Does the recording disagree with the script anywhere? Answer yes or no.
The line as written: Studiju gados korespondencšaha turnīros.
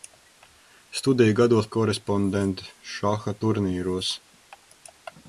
no